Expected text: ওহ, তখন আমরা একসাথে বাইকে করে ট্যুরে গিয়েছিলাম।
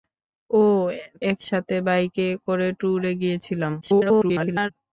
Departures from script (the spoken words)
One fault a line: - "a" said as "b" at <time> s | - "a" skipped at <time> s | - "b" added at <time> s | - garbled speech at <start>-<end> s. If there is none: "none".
- "তখন আমরা" skipped at 0.9 s
- garbled speech at 3.8-4.7 s